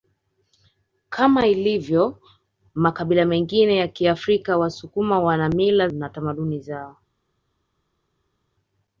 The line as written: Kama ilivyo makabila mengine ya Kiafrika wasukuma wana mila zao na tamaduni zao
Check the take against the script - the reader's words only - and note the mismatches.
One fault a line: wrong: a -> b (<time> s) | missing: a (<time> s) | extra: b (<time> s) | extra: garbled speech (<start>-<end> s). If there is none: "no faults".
missing: zao (5.9 s)